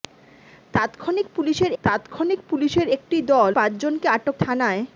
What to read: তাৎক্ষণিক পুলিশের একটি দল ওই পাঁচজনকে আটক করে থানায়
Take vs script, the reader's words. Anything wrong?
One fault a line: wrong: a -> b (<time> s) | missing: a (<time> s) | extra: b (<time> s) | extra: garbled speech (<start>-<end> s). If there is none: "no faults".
extra: তাৎক্ষণিক পুলিশের (1.8 s)
missing: ওই (3.5 s)
missing: করে (4.4 s)